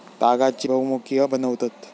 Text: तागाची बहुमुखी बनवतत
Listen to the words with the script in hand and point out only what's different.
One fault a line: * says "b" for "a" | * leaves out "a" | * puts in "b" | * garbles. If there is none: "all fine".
all fine